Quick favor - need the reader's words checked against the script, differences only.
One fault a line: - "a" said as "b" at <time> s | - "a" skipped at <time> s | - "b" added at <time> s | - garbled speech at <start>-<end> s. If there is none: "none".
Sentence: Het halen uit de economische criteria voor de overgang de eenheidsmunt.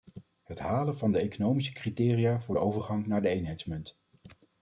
- "uit" said as "van" at 1.0 s
- "naar" added at 3.1 s